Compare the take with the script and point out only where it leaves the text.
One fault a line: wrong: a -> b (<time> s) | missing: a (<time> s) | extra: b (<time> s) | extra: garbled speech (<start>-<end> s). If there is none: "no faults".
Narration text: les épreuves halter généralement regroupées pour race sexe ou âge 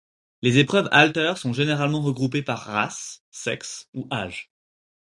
extra: sont (1.4 s)
wrong: pour -> par (2.4 s)